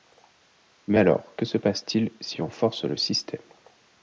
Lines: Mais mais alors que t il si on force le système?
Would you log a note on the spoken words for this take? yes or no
yes